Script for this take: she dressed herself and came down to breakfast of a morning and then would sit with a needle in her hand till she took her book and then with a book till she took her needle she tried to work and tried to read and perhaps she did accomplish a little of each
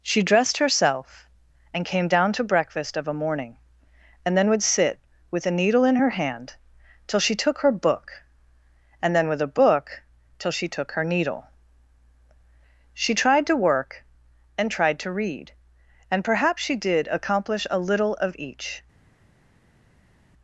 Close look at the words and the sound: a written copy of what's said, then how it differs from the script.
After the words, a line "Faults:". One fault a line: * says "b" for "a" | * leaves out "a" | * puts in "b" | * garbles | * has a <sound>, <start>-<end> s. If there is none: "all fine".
she dressed herself and came down to breakfast of a morning and then would sit with a needle in her hand till she took her book and then with a book till she took her needle she tried to work and tried to read and perhaps she did accomplish a little of each
Faults:
all fine